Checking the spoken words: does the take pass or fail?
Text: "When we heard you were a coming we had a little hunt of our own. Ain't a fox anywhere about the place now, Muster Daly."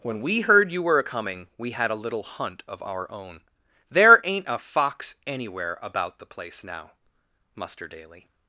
fail